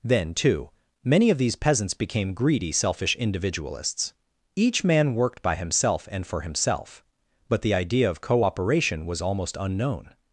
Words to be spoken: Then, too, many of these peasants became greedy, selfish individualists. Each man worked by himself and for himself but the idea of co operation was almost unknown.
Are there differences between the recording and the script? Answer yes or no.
no